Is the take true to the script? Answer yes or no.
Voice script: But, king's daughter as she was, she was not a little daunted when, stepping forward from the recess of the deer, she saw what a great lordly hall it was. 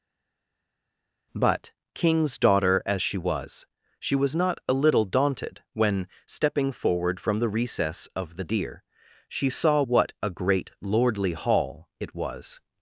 yes